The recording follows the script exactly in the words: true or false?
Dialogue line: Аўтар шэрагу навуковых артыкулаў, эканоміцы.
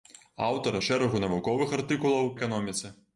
true